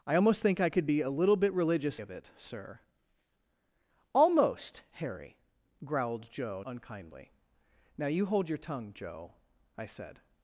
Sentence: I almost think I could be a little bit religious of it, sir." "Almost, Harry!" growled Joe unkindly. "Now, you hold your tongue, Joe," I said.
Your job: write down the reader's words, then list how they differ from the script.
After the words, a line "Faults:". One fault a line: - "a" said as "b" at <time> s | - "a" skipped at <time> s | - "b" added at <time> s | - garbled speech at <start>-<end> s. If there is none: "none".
I almost think I could be a little bit religious of it, sir." "Almost, Harry!" growled Joe unkindly. "Now, you hold your tongue, Joe," I said.
Faults:
none